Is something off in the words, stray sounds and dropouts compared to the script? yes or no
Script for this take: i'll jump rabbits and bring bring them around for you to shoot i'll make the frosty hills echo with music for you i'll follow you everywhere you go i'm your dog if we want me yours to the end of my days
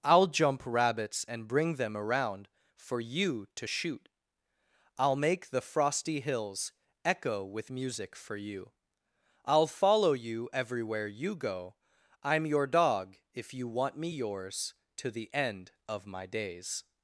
yes